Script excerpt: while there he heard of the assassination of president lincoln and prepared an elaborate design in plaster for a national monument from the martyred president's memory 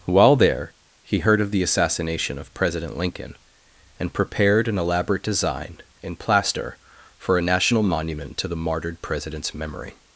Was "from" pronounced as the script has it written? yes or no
no